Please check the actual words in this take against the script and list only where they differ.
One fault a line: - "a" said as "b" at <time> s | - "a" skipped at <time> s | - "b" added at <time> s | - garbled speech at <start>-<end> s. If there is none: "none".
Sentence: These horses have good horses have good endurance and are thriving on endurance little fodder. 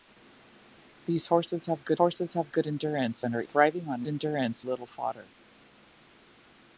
none